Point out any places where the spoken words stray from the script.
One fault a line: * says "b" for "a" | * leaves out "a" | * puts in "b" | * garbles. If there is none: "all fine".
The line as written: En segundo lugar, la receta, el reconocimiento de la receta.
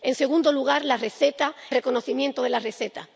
* leaves out "el"